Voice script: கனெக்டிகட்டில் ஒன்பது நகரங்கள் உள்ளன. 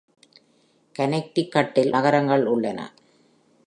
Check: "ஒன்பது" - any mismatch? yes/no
yes